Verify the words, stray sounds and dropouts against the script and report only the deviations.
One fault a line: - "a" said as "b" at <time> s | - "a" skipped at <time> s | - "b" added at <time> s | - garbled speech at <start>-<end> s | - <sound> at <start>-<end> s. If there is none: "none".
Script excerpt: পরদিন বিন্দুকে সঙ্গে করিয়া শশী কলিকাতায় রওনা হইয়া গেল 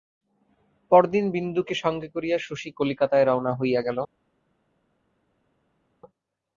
none